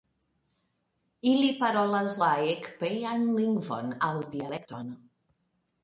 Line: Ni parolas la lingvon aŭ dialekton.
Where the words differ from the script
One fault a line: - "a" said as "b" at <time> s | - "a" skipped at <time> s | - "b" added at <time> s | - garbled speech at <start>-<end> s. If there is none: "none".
- "Ni" said as "Ili" at 1.3 s
- "ekpejan" added at 2.5 s